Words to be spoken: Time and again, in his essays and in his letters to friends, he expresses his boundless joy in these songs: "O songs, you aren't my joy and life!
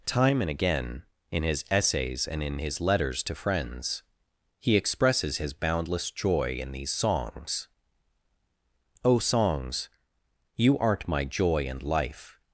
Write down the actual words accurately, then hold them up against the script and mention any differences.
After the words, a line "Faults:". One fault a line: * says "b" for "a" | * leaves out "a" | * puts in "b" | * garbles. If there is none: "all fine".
Time and again, in his essays and in his letters to friends, he expresses his boundless joy in these songs: "O songs, you aren't my joy and life!
Faults:
all fine